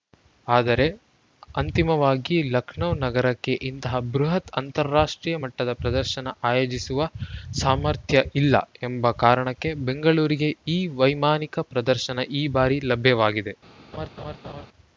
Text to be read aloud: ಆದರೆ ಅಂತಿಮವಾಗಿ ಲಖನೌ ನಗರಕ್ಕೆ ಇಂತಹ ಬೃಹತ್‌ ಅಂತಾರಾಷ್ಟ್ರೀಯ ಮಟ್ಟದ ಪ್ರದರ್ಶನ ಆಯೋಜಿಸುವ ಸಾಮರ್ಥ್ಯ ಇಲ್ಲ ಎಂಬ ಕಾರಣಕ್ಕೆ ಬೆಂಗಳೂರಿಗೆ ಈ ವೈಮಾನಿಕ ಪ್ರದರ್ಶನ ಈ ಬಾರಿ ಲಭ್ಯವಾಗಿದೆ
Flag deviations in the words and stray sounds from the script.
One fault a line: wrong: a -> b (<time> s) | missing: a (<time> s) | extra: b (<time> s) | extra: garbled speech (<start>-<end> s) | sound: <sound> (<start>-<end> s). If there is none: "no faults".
sound: laugh (13.9-14.7 s)